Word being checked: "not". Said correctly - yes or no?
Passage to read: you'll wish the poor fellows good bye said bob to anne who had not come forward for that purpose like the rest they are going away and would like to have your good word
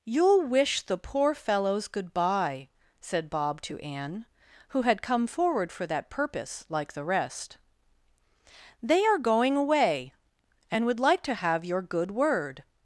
no